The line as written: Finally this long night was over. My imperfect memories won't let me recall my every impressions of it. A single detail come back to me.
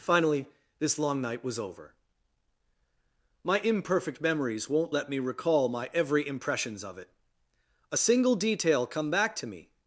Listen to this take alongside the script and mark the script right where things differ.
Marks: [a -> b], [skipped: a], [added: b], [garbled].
Finally this long night was over. My imperfect memories won't let me recall my every impressions of it. A single detail come back to me.